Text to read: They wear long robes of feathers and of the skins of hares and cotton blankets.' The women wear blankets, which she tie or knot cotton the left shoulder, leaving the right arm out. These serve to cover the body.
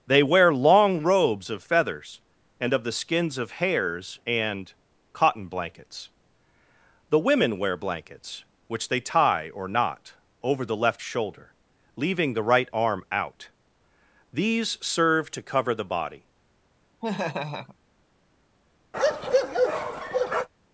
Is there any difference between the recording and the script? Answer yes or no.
yes